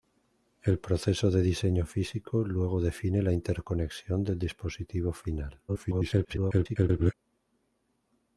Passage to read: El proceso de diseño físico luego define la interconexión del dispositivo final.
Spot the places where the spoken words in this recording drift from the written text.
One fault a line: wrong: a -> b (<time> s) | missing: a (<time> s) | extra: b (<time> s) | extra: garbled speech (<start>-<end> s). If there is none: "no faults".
extra: garbled speech (5.7-7.1 s)